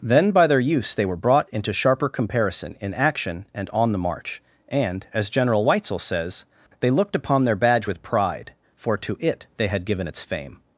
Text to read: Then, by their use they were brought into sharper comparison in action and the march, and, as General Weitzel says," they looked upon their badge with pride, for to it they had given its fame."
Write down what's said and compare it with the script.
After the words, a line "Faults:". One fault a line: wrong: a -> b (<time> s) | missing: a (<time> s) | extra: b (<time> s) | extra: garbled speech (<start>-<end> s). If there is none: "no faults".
Then, by their use they were brought into sharper comparison in action and on the march, and, as General Weitzel says," they looked upon their badge with pride, for to it they had given its fame."
Faults:
extra: on (3.7 s)